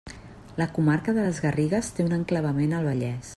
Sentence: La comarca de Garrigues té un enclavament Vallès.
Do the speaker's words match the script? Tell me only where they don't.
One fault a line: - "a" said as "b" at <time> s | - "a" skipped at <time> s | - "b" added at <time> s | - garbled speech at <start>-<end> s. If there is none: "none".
- "les" added at 1.3 s
- "al" added at 2.8 s